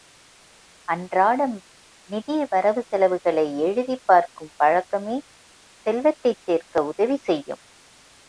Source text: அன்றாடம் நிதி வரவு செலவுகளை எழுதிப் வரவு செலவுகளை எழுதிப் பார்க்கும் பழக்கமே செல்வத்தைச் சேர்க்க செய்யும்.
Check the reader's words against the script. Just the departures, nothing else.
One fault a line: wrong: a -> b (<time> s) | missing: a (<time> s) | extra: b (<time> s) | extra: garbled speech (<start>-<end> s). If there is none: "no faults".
missing: வரவு செலவுகளை எழுதிப் (4.0 s)
extra: உதவி (6.8 s)